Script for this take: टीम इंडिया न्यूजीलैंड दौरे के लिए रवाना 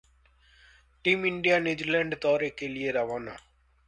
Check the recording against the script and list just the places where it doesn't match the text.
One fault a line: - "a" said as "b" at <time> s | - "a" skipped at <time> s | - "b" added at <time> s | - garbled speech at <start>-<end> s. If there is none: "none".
none